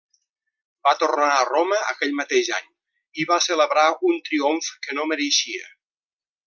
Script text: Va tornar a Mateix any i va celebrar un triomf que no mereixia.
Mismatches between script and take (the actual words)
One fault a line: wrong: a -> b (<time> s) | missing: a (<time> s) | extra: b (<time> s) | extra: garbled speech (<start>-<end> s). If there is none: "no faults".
extra: Roma aquell (1.5 s)